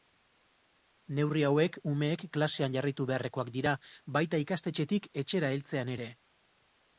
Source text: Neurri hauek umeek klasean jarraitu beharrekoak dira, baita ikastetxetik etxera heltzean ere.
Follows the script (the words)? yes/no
yes